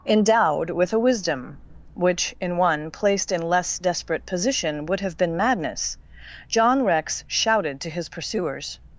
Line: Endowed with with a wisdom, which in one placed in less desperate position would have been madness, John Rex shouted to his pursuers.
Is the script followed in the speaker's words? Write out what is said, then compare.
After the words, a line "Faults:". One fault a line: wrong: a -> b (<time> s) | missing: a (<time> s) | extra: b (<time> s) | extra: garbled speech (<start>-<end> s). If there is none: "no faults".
Endowed with a wisdom, which in one placed in less desperate position would have been madness, John Rex shouted to his pursuers.
Faults:
missing: with (0.9 s)